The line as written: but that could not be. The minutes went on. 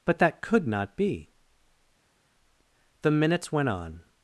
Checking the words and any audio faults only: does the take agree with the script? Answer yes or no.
yes